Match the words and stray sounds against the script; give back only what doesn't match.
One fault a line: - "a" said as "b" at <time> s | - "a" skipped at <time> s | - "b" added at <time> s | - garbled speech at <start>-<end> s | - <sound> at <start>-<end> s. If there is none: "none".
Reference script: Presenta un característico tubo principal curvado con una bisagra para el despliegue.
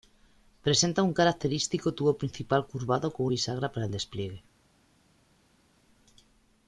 - "una" skipped at 3.3 s